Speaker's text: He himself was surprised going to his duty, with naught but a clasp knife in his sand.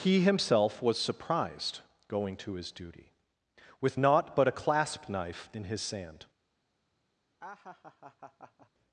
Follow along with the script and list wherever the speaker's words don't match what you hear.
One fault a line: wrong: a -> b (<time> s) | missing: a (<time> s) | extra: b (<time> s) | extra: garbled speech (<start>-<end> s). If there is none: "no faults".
no faults